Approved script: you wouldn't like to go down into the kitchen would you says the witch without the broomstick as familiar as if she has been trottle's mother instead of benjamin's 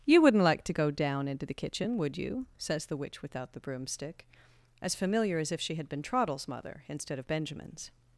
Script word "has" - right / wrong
wrong